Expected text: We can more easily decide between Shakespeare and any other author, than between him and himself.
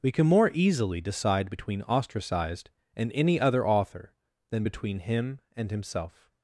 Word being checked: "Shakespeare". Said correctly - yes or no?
no